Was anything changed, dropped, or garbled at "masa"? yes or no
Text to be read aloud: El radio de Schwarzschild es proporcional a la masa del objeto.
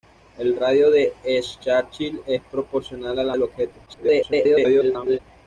yes